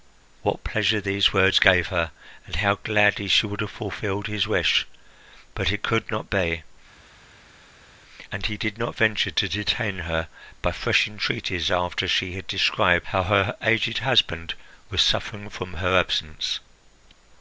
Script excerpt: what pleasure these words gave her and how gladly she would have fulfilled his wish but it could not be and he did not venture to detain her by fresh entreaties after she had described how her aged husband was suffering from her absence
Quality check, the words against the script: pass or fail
pass